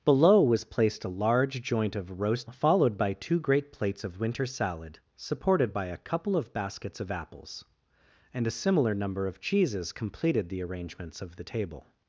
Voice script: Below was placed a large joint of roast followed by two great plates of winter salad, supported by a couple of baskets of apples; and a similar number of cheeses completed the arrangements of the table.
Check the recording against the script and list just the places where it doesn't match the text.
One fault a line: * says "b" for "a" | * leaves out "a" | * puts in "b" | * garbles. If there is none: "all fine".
all fine